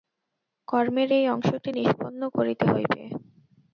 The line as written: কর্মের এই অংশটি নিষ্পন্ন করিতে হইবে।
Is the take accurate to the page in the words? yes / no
yes